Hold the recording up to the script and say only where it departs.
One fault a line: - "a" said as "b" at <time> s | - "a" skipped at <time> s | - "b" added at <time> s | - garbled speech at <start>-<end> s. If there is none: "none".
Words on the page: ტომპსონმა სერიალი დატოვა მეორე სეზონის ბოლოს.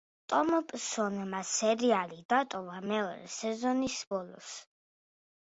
none